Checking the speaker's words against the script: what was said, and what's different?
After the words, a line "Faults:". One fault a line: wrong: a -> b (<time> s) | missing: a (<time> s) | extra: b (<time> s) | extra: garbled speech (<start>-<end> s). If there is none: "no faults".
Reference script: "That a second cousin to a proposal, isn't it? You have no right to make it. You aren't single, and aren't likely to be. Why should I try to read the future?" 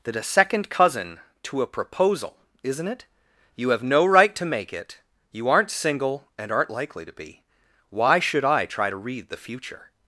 "That a second cousin to a proposal, isn't it? You have no right to make it. You aren't single, and aren't likely to be. Why should I try to read the future?"
Faults:
no faults